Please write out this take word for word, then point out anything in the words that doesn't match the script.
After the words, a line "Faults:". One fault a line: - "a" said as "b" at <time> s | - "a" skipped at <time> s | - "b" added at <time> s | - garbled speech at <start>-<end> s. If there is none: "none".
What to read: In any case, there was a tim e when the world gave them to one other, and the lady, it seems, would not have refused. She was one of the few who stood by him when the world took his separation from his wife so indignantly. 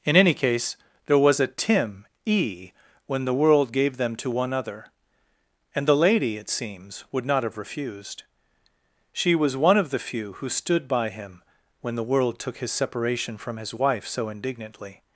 In any case, there was a tim e when the world gave them to one other, and the lady, it seems, would not have refused. She was one of the few who stood by him when the world took his separation from his wife so indignantly.
Faults:
none